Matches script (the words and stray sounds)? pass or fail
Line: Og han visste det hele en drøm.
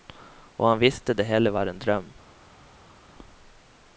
fail